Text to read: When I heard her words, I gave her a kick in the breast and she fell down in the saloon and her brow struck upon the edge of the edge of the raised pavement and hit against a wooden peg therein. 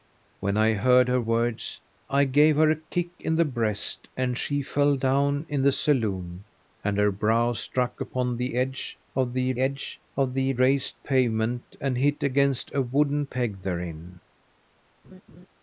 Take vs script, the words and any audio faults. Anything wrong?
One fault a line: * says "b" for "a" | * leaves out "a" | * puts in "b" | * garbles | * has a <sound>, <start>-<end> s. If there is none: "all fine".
* has a laugh, 15.0-15.5 s